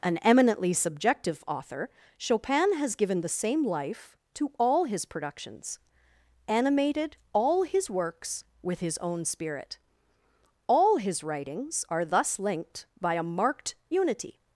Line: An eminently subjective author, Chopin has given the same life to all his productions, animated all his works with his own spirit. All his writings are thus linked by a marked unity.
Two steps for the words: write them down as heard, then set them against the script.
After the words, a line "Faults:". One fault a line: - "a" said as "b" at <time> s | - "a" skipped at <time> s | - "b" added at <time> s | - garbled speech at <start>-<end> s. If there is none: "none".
An eminently subjective author, Chopin has given the same life to all his productions, animated all his works with his own spirit. All his writings are thus linked by a marked unity.
Faults:
none